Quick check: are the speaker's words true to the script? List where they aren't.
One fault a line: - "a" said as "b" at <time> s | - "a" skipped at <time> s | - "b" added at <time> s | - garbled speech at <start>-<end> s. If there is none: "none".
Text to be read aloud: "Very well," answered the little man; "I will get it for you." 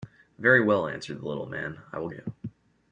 - "get it for" skipped at 2.1 s